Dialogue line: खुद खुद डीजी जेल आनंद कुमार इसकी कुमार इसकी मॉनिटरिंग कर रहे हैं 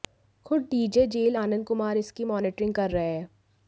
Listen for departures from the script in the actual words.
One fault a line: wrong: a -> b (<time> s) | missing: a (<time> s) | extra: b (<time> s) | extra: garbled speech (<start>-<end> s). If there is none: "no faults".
missing: खुद (0.6 s)
missing: कुमार इसकी (2.2 s)